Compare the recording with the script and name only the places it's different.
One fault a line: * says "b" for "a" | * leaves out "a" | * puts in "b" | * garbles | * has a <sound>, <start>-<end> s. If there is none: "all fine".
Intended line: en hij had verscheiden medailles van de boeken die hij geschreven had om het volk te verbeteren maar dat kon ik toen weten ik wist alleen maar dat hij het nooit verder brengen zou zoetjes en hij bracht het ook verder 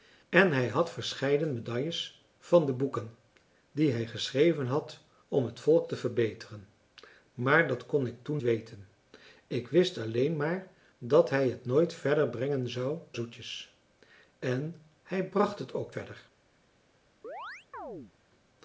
* has a chirp, 17.2-18.1 s